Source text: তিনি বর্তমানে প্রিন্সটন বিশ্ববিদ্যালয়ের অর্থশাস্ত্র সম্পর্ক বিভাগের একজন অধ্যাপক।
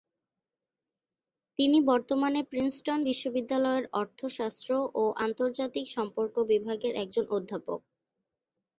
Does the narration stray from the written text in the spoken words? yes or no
yes